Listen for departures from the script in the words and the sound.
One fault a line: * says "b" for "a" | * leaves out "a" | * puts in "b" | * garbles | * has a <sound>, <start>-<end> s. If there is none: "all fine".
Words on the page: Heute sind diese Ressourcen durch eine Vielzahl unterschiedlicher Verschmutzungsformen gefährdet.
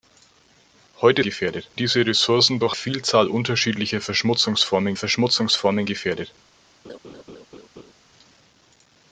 * says "gefährdet" for "sind"
* leaves out "eine"
* puts in "Verschmutzungsformen"
* has a laugh, 6.8-7.9 s